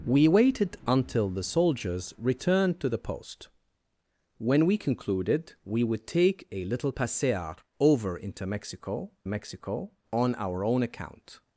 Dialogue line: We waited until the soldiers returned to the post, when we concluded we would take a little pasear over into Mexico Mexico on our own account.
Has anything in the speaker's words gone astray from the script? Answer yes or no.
no